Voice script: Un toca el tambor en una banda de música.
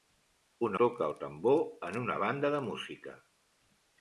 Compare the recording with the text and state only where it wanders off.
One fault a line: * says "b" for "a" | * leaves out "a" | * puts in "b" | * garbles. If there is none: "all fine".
all fine